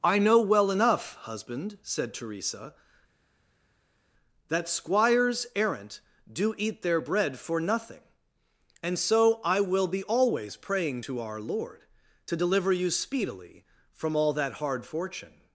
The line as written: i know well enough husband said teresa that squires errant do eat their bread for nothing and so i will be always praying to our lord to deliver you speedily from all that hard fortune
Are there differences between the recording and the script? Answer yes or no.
no